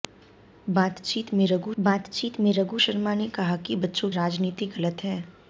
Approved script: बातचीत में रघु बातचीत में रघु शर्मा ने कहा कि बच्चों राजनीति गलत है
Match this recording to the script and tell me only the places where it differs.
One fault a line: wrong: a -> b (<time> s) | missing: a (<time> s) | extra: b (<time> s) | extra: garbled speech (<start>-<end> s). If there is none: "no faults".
no faults